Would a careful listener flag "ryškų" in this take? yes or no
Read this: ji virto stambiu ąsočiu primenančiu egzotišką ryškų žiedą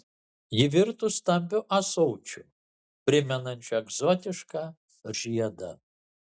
yes